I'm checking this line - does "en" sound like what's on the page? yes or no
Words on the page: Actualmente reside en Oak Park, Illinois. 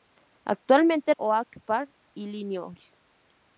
no